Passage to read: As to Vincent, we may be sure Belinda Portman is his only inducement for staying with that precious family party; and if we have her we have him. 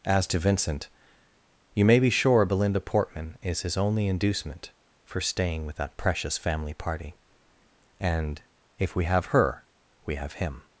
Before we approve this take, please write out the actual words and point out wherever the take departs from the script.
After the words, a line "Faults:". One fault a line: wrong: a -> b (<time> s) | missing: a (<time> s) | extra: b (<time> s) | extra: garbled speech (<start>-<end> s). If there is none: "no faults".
As to Vincent, you may be sure Belinda Portman is his only inducement for staying with that precious family party; and if we have her we have him.
Faults:
wrong: we -> you (1.7 s)